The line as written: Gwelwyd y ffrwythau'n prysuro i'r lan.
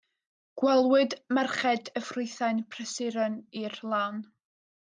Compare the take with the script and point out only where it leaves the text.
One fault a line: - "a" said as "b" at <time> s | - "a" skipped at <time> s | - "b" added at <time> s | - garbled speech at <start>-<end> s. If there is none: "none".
- "merched" added at 1.4 s